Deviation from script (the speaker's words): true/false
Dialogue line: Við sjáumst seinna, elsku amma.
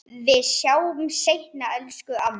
false